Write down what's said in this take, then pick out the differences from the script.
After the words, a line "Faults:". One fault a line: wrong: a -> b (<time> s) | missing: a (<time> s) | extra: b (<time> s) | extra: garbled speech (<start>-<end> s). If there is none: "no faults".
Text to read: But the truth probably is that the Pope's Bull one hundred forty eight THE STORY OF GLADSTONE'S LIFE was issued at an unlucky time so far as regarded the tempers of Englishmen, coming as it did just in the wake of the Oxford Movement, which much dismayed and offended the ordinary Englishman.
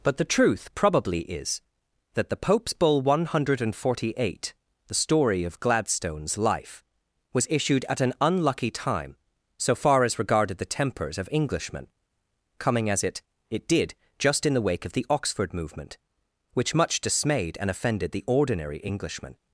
But the truth probably is that the Pope's Bull one hundred forty eight THE STORY OF GLADSTONE'S LIFE was issued at an unlucky time so far as regarded the tempers of Englishmen, coming as it it did just in the wake of the Oxford Movement, which much dismayed and offended the ordinary Englishman.
Faults:
extra: it (13.5 s)